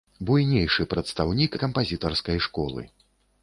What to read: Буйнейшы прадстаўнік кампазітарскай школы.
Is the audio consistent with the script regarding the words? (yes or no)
yes